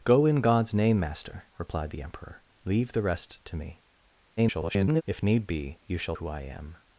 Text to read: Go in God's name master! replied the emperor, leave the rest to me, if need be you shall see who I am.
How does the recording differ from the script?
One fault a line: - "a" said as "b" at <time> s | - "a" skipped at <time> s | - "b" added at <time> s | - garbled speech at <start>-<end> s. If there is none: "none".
- garbled speech at 4.4-5.0 s
- "see" skipped at 6.2 s